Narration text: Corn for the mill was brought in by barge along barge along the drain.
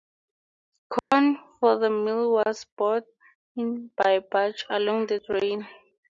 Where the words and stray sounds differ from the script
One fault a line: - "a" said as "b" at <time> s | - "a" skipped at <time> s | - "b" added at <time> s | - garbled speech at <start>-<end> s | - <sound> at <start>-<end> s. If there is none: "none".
- dropout at 1.0-1.1 s
- "barge along" skipped at 5.1 s